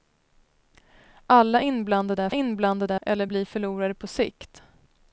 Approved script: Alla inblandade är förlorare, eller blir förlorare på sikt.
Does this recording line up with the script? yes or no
no